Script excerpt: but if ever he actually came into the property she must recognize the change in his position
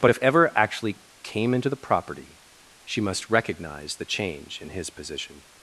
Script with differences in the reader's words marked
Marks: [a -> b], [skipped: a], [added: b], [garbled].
but if ever [skipped: he] actually came into the property she must recognize the change in his position